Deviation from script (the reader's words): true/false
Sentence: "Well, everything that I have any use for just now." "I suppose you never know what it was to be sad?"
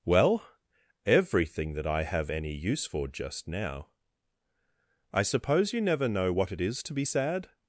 true